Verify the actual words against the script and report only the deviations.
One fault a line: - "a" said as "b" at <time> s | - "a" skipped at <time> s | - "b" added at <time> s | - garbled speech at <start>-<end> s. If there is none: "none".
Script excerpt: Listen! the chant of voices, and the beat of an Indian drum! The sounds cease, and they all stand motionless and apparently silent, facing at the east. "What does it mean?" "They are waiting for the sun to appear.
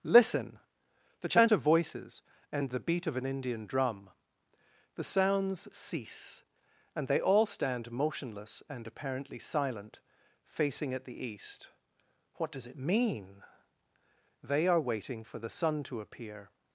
none